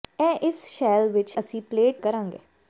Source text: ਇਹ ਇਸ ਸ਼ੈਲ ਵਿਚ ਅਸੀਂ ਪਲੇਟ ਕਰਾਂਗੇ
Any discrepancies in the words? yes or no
no